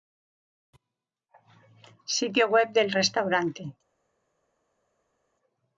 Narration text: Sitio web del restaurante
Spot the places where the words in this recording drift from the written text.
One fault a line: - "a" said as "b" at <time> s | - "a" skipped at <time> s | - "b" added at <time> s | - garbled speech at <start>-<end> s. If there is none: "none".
none